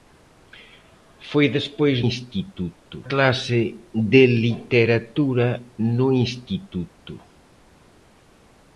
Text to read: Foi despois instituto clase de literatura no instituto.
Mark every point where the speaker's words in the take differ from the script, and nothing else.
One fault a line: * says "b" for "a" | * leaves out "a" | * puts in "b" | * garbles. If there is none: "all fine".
all fine